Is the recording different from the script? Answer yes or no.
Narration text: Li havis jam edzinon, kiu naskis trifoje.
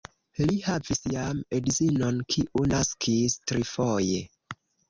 no